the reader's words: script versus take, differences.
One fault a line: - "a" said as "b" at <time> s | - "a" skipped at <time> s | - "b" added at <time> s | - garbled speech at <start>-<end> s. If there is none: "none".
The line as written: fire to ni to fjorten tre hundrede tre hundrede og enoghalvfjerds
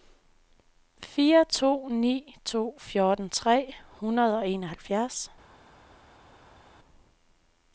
- "tre hundrede" skipped at 4.4 s